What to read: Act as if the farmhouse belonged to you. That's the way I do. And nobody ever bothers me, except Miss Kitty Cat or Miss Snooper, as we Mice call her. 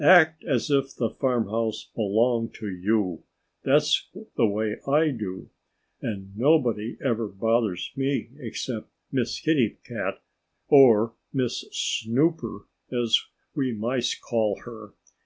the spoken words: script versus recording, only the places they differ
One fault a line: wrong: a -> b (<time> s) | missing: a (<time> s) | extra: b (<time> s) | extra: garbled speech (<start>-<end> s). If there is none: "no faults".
no faults